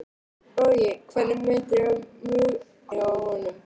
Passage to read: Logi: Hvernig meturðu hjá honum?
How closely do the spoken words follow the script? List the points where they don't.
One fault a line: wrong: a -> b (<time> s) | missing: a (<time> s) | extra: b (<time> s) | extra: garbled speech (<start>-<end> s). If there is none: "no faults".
no faults